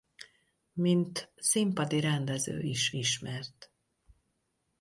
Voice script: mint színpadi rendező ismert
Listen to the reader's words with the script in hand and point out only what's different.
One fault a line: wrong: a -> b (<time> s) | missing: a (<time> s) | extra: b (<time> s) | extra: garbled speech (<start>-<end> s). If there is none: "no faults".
extra: is (2.6 s)